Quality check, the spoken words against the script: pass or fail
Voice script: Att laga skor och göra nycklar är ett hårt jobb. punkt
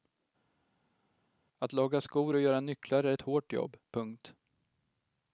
pass